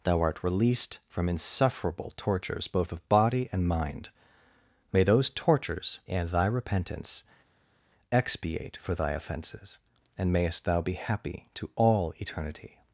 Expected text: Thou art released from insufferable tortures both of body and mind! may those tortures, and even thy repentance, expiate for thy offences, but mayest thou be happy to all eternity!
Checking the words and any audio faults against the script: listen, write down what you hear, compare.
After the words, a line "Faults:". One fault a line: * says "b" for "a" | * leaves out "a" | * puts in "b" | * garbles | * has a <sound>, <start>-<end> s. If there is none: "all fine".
Thou art released from insufferable tortures both of body and mind! may those tortures, and thy repentance, expiate for thy offences, and mayest thou be happy to all eternity!
Faults:
* leaves out "even"
* says "and" for "but"